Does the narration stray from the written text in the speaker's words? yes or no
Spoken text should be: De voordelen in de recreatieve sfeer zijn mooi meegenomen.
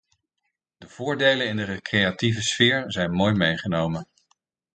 no